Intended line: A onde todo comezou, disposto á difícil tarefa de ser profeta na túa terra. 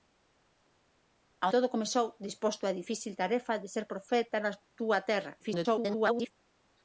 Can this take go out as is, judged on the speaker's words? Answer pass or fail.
fail